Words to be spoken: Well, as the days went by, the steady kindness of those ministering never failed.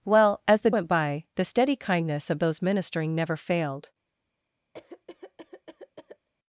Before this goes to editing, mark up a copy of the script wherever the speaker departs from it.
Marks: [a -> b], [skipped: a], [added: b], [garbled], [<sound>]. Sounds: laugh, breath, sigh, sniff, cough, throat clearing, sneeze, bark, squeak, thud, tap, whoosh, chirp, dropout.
Well, as the [skipped: days] went by, the steady kindness of those ministering never failed. [cough]